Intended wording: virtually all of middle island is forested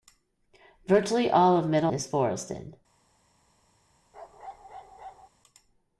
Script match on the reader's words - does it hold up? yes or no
no